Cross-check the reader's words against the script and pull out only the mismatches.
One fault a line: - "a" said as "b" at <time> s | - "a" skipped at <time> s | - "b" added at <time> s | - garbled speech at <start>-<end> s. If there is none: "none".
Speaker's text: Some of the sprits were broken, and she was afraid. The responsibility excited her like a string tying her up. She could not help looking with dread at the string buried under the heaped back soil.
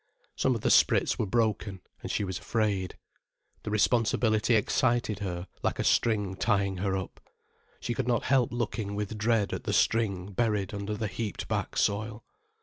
none